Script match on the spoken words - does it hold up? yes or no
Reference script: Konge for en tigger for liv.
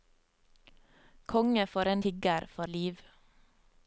yes